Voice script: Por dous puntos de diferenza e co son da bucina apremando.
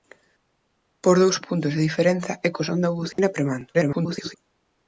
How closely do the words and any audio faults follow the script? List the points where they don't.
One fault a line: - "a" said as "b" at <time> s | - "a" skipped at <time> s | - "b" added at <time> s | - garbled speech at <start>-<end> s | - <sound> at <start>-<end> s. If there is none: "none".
- dropout at 3.1-3.2 s
- garbled speech at 3.7-4.3 s